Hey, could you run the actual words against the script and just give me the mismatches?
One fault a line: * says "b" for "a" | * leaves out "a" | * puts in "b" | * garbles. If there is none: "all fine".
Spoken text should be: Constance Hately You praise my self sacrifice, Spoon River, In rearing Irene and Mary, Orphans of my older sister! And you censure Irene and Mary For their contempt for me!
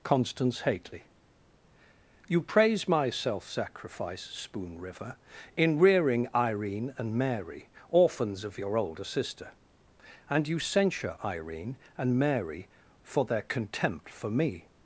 * says "your" for "my"